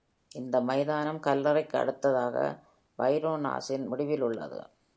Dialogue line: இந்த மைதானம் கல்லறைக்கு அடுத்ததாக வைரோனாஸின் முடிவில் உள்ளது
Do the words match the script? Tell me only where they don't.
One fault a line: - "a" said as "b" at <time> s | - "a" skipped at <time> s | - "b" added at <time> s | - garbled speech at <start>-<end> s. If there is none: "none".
none